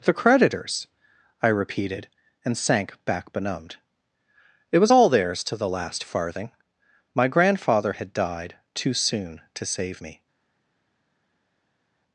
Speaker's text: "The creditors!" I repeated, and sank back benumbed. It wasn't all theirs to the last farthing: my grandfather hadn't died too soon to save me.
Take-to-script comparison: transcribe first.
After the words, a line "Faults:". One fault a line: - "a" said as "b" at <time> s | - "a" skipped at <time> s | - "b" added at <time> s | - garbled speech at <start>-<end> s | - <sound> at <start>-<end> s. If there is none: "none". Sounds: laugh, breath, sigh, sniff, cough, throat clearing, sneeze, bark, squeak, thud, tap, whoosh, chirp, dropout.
"The creditors!" I repeated, and sank back benumbed. It was all theirs to the last farthing: my grandfather had died too soon to save me.
Faults:
- "wasn't" said as "was" at 4.8 s
- "hadn't" said as "had" at 7.9 s